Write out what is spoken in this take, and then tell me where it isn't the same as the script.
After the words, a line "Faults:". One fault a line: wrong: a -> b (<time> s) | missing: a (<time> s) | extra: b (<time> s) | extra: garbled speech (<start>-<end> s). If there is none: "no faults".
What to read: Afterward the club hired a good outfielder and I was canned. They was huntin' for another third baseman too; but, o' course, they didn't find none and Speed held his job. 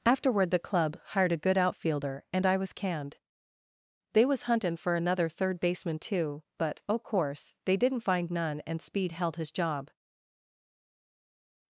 Afterward the club hired a good outfielder and I was canned. They was huntin' for another third baseman too; but, o' course, they didn't find none and Speed held his job.
Faults:
no faults